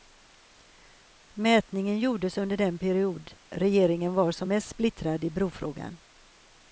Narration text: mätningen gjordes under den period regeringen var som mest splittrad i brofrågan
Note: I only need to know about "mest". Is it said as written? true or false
true